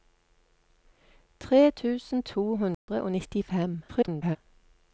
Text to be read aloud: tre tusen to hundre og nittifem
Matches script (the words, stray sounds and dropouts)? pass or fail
fail